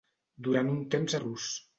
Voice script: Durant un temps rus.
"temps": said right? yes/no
yes